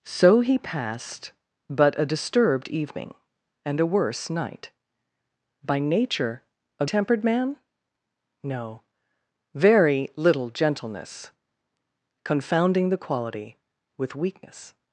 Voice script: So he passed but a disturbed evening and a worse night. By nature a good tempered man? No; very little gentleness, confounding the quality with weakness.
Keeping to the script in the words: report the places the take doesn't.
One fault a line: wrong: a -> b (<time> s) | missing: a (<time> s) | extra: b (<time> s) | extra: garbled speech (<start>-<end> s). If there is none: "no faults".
missing: good (6.8 s)